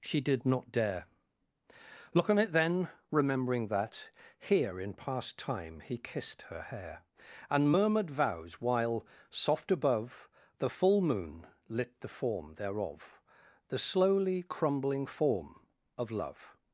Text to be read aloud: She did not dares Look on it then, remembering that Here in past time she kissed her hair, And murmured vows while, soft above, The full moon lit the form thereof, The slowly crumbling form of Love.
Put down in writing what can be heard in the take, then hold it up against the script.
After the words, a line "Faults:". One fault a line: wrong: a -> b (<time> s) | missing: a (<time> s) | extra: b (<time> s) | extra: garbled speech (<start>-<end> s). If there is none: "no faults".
She did not dare Look on it then, remembering that Here in past time he kissed her hair, And murmured vows while, soft above, The full moon lit the form thereof, The slowly crumbling form of Love.
Faults:
wrong: dares -> dare (0.7 s)
wrong: she -> he (5.8 s)